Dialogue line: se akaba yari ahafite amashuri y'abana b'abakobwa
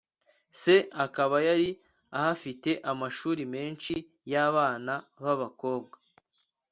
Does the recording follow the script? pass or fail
fail